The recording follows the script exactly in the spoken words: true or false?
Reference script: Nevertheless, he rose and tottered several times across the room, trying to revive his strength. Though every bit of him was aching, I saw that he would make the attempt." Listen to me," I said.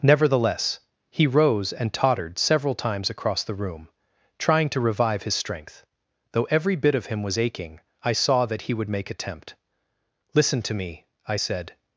false